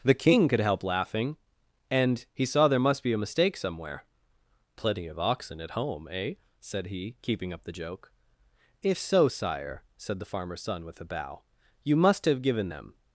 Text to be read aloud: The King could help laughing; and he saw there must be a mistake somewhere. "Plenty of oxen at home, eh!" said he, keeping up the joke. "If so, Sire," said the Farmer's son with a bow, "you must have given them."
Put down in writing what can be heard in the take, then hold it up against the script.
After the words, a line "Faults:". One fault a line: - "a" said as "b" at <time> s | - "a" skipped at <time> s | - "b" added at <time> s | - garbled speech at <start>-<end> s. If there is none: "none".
The King could help laughing; and he saw there must be a mistake somewhere. "Plenty of oxen at home, eh!" said he, keeping up the joke. "If so, Sire," said the Farmer's son with a bow, "you must have given them."
Faults:
none